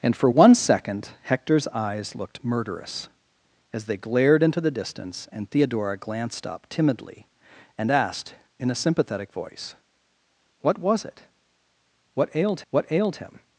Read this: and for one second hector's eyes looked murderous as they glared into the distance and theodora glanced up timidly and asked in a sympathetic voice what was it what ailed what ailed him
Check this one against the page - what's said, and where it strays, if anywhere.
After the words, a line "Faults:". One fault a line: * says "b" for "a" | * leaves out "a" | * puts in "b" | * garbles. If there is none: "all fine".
and for one second hector's eyes looked murderous as they glared into the distance and theodora glanced up timidly and asked in a sympathetic voice what was it what ailed what ailed him
Faults:
all fine